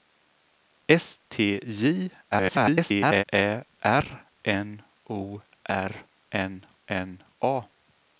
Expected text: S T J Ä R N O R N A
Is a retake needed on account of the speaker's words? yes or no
yes